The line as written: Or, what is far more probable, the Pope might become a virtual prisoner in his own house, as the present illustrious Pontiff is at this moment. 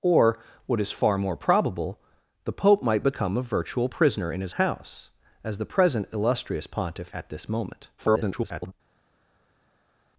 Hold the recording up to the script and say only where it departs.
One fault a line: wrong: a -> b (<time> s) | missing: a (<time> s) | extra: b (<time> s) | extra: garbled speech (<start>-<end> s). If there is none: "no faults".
missing: own (4.5 s)
missing: is (7.1 s)
extra: garbled speech (8.0-8.7 s)